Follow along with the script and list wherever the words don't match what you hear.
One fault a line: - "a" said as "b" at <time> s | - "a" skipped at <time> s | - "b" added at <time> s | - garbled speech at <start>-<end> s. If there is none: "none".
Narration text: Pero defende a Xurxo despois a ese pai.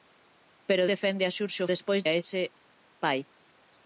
none